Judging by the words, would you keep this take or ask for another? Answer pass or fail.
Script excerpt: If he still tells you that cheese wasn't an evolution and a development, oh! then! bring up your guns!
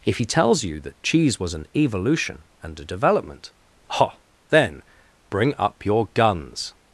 fail